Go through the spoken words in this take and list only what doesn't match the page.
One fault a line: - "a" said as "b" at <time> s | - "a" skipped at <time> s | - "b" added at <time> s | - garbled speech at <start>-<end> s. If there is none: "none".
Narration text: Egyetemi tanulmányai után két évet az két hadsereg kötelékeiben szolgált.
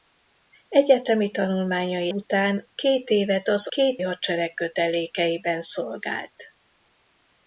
none